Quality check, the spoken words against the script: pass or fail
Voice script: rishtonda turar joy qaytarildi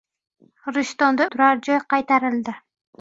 pass